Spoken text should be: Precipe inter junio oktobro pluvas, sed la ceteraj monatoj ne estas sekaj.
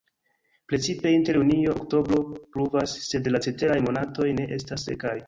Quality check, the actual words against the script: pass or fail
pass